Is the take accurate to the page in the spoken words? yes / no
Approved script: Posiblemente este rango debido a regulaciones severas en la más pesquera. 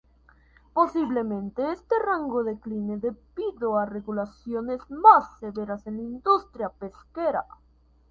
no